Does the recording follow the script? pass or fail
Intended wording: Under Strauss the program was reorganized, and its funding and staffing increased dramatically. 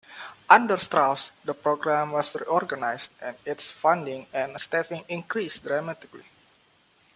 pass